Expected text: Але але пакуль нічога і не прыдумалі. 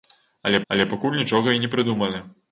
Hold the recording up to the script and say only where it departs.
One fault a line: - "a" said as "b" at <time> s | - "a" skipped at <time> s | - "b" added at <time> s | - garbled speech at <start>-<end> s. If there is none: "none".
none